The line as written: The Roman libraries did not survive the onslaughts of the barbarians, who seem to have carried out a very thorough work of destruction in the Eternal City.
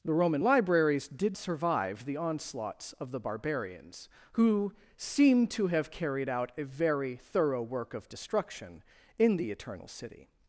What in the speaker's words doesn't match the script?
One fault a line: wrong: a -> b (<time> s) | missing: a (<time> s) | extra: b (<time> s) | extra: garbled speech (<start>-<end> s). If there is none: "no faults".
missing: not (1.4 s)